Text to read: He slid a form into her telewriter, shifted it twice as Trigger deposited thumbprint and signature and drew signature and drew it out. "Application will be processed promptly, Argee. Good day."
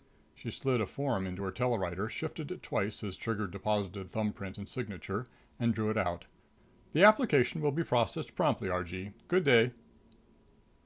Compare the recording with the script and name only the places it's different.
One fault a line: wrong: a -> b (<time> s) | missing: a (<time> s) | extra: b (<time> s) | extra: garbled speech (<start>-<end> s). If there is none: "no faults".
wrong: He -> She (0.3 s)
missing: signature and drew (5.9 s)
extra: The (6.9 s)